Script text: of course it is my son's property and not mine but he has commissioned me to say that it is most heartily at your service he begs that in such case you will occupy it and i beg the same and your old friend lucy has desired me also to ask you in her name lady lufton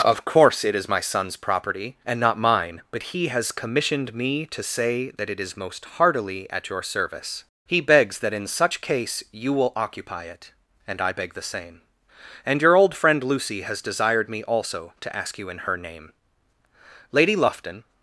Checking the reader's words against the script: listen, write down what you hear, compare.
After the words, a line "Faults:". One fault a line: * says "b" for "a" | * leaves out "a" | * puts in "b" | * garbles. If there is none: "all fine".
of course it is my son's property and not mine but he has commissioned me to say that it is most heartily at your service he begs that in such case you will occupy it and i beg the same and your old friend lucy has desired me also to ask you in her name lady lufton
Faults:
all fine